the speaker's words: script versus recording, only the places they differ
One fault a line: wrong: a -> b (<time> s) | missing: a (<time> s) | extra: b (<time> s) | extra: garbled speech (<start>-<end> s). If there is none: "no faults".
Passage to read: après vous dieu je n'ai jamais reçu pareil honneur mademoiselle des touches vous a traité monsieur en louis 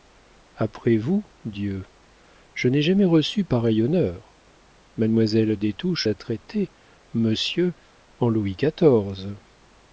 missing: vous (6.1 s)